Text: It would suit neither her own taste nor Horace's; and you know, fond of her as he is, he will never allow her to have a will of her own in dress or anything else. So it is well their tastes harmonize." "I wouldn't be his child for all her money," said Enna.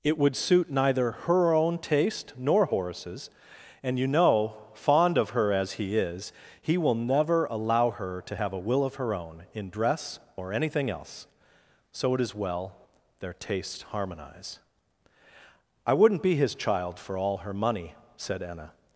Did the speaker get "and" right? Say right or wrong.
right